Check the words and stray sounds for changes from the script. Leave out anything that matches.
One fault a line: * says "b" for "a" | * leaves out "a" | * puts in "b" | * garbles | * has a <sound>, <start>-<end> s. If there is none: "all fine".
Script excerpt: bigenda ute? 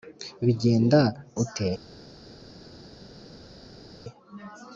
all fine